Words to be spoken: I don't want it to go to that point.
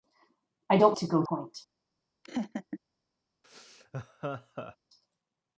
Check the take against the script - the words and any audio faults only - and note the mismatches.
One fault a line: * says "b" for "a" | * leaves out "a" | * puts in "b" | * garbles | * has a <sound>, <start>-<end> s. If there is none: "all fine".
* leaves out "want it"
* leaves out "to that"
* has a laugh, 2.2-2.8 s
* has a laugh, 3.4-4.8 s